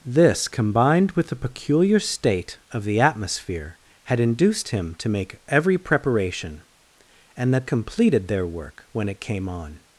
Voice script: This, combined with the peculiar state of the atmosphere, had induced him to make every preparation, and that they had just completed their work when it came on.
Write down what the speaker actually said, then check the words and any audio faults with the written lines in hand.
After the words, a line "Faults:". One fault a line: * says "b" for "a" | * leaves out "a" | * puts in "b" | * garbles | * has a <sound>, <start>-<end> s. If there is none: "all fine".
This, combined with the peculiar state of the atmosphere, had induced him to make every preparation, and that completed their work when it came on.
Faults:
* leaves out "they had just"